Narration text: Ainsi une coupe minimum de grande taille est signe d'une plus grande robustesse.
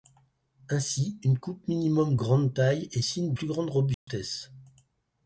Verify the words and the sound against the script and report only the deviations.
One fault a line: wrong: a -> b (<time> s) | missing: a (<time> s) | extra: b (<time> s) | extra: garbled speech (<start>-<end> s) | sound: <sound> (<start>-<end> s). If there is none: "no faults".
missing: de (2.1 s)
missing: d'une (3.3 s)
sound: dropout (3.9-4.1 s)